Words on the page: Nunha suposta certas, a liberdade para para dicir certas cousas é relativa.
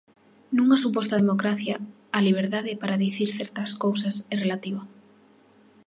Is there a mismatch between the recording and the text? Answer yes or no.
yes